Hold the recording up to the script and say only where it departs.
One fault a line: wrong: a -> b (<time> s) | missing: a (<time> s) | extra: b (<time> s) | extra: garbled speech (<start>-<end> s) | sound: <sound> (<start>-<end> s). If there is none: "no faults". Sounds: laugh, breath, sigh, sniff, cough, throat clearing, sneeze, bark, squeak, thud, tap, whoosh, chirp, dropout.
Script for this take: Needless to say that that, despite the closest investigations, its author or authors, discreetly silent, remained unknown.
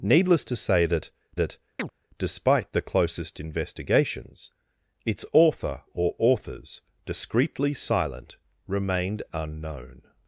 sound: chirp (1.8-1.9 s)